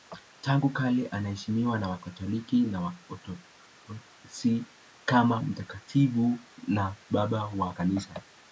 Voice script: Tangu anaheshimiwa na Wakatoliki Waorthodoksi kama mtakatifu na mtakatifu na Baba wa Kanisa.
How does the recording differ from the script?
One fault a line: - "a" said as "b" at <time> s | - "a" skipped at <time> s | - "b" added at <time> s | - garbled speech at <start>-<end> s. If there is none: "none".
- "kale" added at 0.7 s
- "na" added at 2.6 s
- "mtakatifu na" skipped at 7.0 s